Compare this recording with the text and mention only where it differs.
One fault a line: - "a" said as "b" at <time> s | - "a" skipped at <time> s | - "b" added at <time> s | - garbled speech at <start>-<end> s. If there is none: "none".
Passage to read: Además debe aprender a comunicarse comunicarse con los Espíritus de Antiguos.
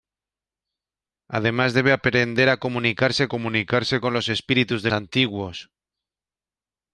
none